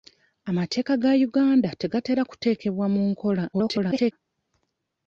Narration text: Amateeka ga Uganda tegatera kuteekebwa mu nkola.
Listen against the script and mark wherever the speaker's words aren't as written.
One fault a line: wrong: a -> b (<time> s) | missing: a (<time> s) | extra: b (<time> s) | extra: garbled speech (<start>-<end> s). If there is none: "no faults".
extra: garbled speech (3.5-4.1 s)